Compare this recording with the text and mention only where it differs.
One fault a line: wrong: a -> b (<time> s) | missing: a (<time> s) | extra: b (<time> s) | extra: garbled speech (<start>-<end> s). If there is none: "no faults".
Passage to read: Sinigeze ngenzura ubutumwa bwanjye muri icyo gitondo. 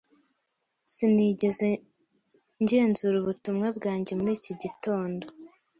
wrong: icyo -> iki (4.4 s)